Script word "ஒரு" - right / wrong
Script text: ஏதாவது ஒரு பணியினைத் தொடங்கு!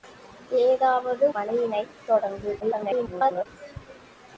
wrong